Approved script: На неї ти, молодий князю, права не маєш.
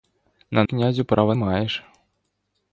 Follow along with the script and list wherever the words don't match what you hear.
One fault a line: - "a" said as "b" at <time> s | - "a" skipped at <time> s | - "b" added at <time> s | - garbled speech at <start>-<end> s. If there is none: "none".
- "неї ти молодий" skipped at 0.6 s
- "не" skipped at 1.3 s